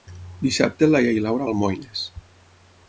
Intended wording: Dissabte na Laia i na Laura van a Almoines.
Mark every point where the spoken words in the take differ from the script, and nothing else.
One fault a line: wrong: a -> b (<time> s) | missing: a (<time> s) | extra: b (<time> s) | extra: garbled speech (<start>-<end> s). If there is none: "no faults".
missing: van (1.5 s)